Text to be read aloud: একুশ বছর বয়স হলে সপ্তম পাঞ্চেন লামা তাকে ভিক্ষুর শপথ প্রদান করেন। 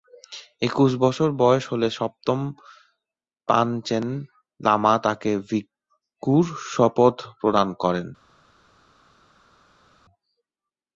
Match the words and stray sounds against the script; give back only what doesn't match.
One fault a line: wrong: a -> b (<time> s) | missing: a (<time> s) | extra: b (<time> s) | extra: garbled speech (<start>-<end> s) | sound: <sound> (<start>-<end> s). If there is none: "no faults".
no faults